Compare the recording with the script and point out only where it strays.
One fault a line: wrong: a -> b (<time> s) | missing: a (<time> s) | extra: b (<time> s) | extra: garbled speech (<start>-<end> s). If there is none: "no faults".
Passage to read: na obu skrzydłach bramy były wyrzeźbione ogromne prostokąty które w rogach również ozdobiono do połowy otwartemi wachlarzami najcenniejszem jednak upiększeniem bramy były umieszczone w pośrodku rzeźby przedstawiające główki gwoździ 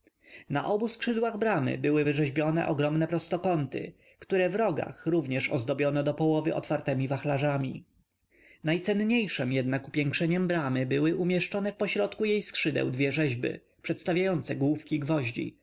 extra: jej skrzydeł dwie (12.2 s)